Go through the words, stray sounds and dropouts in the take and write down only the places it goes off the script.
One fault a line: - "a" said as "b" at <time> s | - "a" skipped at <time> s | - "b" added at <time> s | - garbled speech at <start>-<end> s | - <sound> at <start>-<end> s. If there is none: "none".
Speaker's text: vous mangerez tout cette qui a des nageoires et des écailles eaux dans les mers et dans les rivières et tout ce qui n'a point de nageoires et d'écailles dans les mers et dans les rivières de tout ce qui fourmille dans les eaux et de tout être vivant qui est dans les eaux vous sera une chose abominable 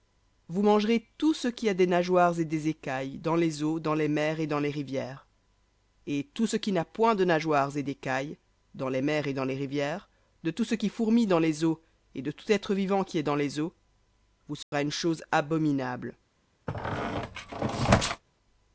- "cette" said as "ce" at 1.4 s
- "dans les" added at 3.2 s
- dropout at 14.6-14.7 s
- squeak at 16.7-18.2 s